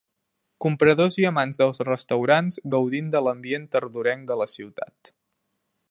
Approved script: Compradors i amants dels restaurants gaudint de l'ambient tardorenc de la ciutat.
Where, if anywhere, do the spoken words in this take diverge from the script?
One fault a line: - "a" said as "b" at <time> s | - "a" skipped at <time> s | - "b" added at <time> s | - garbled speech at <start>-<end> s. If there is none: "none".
none